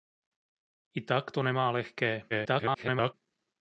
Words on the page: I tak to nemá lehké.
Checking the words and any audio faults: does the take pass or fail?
fail